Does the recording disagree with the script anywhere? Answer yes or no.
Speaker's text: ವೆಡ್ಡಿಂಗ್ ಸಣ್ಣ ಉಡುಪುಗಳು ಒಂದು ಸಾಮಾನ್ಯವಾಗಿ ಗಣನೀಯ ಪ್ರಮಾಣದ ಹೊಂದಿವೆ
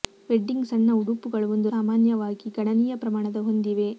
no